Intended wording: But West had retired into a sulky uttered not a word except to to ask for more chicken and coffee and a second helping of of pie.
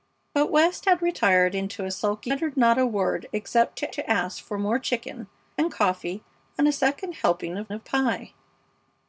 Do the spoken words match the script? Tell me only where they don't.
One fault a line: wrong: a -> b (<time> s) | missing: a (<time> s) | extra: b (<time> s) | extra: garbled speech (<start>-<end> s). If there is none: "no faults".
no faults